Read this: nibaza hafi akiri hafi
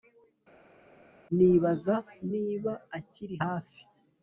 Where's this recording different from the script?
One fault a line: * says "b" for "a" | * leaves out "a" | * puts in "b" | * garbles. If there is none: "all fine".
* says "niba" for "hafi"